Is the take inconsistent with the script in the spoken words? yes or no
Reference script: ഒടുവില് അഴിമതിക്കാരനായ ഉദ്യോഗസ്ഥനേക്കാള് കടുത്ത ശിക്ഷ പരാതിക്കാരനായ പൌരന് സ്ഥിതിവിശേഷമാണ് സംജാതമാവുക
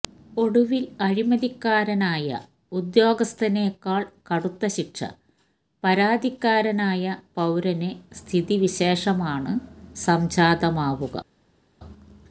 no